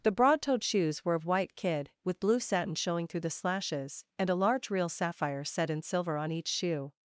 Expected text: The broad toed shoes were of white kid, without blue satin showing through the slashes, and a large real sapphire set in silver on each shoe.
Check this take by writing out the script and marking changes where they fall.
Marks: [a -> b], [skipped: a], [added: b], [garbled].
The broad toed shoes were of white kid, [without -> with] blue satin showing through the slashes, and a large real sapphire set in silver on each shoe.